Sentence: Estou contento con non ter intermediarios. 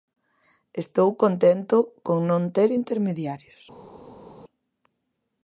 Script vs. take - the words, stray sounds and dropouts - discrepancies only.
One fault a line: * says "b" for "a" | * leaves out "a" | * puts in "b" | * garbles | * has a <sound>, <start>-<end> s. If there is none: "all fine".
all fine